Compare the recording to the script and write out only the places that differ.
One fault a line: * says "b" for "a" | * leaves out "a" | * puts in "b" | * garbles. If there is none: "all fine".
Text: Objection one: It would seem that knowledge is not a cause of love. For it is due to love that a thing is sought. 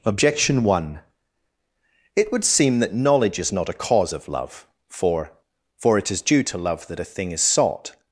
* puts in "For"